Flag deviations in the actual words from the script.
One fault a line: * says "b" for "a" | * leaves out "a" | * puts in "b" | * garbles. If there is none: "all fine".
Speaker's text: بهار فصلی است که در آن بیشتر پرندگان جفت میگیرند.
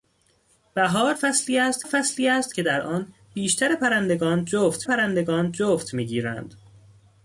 * puts in "فصلی است"
* puts in "پرندگان جفت"